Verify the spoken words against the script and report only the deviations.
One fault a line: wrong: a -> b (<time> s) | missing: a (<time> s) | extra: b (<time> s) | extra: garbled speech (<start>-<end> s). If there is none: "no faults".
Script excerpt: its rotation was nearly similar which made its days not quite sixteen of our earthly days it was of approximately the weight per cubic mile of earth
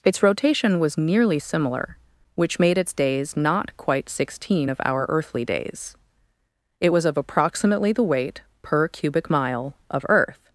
no faults